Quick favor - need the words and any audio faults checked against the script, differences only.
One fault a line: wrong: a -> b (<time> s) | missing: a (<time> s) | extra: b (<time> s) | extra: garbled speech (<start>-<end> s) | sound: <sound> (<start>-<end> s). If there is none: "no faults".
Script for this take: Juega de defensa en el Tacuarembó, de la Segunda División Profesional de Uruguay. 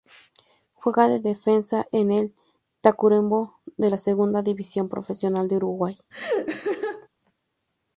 sound: laugh (6.1-7.1 s)